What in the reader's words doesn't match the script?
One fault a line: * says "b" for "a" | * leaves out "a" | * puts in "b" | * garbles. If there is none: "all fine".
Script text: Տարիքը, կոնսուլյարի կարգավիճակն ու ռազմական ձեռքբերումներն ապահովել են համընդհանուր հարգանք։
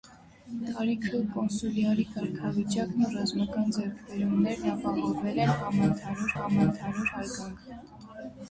* puts in "համընդհանուր"